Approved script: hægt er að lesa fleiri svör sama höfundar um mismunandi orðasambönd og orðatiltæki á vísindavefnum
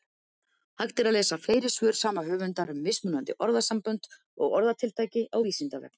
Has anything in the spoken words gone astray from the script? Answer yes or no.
no